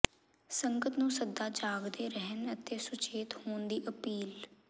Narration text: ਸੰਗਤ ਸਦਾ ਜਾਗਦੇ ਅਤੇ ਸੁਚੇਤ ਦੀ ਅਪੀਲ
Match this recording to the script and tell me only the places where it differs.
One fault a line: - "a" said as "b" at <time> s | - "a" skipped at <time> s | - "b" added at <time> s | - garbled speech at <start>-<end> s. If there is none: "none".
- "ਨੂੰ" added at 1.0 s
- "ਰਹਿਣ" added at 2.1 s
- "ਹੋਣ" added at 3.4 s